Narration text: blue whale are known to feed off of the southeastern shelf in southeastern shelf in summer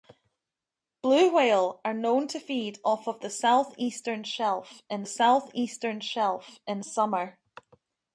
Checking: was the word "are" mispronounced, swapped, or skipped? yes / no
no